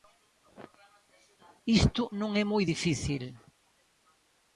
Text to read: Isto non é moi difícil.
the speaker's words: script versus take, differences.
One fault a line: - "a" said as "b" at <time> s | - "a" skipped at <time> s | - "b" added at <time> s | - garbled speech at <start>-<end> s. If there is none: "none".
none